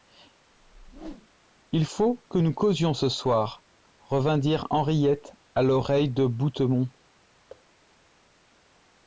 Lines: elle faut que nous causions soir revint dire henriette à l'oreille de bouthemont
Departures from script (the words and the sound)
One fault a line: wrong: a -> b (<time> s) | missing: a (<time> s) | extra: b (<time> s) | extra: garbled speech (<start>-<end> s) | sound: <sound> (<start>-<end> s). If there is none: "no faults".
sound: whoosh (0.5-1.3 s)
wrong: elle -> il (1.7 s)
extra: ce (2.9 s)
sound: thud (7.5-7.7 s)